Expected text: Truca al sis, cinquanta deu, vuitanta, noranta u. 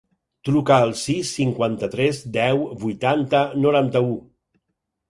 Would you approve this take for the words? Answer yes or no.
no